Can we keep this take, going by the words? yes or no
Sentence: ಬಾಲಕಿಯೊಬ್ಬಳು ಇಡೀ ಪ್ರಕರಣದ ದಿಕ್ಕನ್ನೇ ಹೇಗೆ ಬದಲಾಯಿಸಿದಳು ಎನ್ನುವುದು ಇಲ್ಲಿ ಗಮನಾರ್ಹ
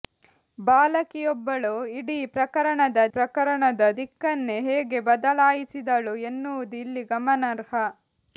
no